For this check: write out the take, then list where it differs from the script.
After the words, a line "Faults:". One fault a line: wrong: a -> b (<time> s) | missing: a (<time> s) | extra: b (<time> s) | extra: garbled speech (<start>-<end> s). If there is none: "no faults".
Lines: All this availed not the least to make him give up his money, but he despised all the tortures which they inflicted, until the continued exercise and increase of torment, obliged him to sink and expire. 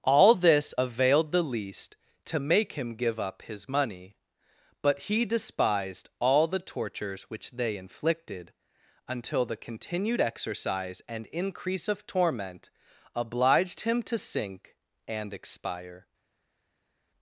All this availed the least to make him give up his money, but he despised all the tortures which they inflicted, until the continued exercise and increase of torment, obliged him to sink and expire.
Faults:
missing: not (1.3 s)